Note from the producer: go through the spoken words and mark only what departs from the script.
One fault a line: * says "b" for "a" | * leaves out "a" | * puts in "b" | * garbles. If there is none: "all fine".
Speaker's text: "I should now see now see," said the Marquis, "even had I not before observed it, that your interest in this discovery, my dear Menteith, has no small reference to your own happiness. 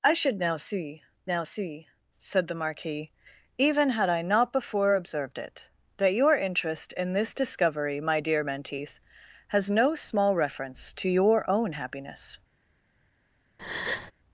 all fine